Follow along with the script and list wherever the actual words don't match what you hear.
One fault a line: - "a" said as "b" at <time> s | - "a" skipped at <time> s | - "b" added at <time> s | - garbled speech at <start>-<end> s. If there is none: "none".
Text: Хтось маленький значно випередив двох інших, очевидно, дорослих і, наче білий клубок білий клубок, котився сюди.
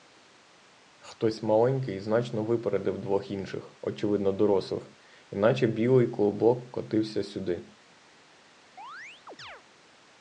- "білий клубок" skipped at 6.7 s